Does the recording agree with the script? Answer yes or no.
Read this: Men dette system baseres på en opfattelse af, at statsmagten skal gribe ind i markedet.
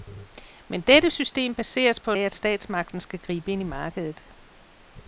no